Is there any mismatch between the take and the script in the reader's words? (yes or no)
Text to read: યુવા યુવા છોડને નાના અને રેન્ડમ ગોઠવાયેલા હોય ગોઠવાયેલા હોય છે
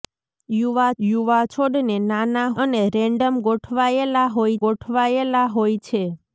no